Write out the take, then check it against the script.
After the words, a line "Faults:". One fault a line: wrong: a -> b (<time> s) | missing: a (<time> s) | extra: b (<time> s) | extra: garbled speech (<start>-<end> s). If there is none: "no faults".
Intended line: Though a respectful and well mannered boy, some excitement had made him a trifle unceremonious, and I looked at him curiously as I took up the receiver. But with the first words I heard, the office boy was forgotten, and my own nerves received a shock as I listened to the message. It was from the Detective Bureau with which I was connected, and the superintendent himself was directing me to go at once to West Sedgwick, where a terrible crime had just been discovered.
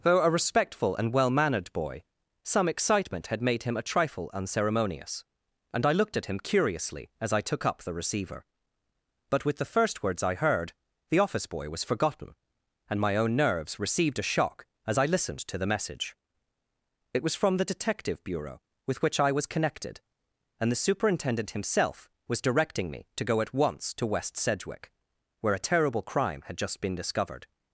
Though a respectful and well mannered boy, some excitement had made him a trifle unceremonious, and I looked at him curiously as I took up the receiver. But with the first words I heard, the office boy was forgotten, and my own nerves received a shock as I listened to the message. It was from the Detective Bureau with which I was connected, and the superintendent himself was directing me to go at once to West Sedgwick, where a terrible crime had just been discovered.
Faults:
no faults